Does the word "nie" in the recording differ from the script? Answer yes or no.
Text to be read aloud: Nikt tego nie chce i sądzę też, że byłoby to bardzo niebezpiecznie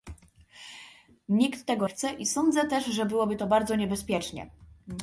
yes